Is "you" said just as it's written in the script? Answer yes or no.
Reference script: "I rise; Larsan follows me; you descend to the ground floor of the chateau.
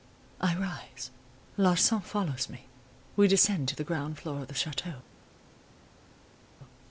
no